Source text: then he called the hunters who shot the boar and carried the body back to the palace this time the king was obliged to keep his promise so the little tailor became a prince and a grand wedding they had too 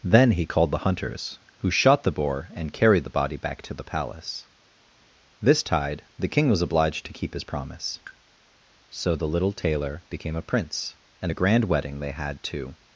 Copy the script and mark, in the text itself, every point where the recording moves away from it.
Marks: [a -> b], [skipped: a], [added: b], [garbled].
then he called the hunters who shot the boar and carried the body back to the palace this [time -> tide] the king was obliged to keep his promise so the little tailor became a prince and a grand wedding they had too